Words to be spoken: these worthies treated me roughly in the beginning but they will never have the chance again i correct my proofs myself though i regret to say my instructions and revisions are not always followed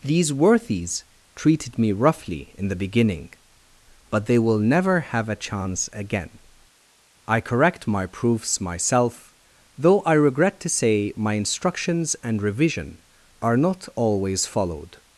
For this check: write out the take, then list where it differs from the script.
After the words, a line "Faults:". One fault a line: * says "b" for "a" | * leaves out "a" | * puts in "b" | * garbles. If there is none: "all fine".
these worthies treated me roughly in the beginning but they will never have a chance again i correct my proofs myself though i regret to say my instructions and revision are not always followed
Faults:
* says "a" for "the"
* says "revision" for "revisions"